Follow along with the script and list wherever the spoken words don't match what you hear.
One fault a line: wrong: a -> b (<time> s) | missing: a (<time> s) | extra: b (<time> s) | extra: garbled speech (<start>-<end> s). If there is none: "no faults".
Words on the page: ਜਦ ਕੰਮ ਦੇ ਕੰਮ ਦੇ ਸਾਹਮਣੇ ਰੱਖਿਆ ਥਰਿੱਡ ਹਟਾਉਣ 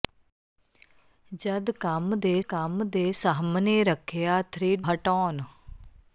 no faults